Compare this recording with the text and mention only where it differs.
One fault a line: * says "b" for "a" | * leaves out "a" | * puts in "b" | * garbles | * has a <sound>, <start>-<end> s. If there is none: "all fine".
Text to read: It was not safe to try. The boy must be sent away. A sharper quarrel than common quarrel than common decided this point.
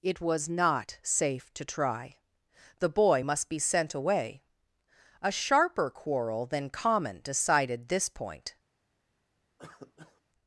* leaves out "quarrel than common"
* has a cough, 9.6-10.2 s